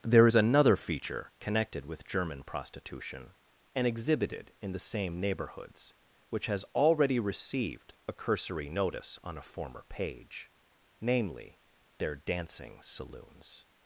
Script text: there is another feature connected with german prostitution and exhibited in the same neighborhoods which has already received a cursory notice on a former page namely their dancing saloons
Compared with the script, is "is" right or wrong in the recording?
right